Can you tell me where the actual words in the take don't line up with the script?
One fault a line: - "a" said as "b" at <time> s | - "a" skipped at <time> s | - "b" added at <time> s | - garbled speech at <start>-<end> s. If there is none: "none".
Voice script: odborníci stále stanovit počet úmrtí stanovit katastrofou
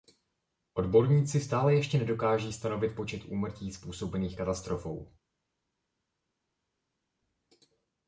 - "ještě nedokáží" added at 1.8 s
- "stanovit" said as "způsobených" at 3.7 s